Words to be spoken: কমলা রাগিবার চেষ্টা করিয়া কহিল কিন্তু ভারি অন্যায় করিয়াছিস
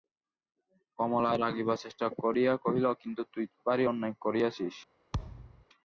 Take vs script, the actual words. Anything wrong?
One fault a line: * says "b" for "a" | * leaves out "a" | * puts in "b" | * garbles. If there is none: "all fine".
* puts in "তুই"